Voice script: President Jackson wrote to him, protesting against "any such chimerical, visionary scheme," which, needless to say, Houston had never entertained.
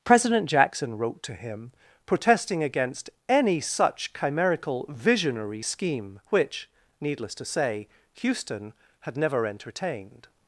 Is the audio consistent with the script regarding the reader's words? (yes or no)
yes